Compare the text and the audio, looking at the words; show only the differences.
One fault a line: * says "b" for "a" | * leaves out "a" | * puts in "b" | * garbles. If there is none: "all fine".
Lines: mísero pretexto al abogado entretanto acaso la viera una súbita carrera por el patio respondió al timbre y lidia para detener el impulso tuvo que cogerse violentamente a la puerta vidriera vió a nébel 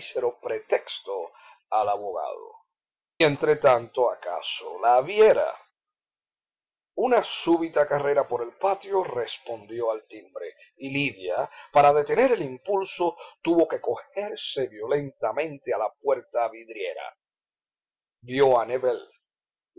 all fine